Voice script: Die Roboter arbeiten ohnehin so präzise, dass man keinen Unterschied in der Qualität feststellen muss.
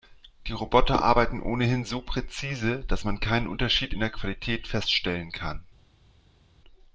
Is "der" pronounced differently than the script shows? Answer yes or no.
no